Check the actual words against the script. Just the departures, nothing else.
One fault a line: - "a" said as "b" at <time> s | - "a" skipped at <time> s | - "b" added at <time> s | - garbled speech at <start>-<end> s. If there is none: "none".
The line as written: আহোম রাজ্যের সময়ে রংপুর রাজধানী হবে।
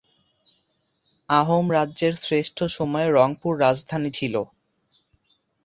- "শ্রেষ্ঠ" added at 2.2 s
- "হবে" said as "ছিল" at 4.1 s